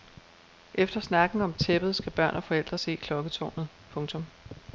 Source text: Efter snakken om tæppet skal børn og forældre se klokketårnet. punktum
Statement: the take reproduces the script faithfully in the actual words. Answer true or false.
true